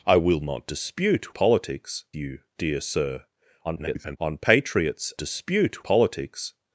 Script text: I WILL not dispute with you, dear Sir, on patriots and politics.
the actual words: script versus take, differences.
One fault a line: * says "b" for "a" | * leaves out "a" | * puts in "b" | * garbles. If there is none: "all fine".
* says "politics" for "with"
* garbles
* says "dispute" for "and"